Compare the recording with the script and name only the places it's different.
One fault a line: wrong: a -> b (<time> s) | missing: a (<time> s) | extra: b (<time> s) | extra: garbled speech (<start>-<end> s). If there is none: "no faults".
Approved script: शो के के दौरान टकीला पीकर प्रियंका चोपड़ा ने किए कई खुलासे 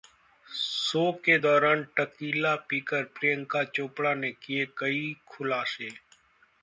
missing: के (1.4 s)